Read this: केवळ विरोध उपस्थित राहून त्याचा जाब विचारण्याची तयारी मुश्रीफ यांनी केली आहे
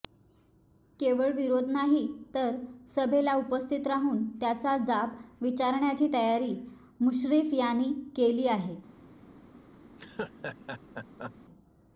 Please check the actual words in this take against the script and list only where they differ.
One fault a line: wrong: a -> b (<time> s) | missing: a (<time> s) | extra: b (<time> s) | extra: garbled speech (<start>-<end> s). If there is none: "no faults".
extra: नाही तर सभेला (1.7 s)